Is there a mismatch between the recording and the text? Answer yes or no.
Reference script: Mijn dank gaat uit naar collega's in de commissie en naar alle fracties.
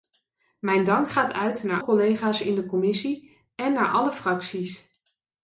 no